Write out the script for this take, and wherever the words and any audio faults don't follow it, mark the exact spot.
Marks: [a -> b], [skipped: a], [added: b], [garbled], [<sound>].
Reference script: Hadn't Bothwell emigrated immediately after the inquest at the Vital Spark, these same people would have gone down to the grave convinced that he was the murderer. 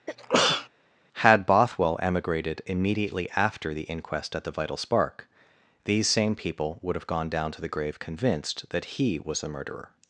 [sneeze] [Hadn't -> Had] Bothwell emigrated immediately after the inquest at the Vital Spark, these same people would have gone down to the grave convinced that he was the murderer.